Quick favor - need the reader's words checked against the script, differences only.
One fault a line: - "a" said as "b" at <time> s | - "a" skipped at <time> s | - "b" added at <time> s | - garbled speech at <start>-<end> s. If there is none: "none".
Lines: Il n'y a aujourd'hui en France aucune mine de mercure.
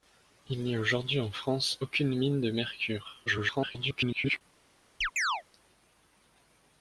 - garbled speech at 3.3-4.4 s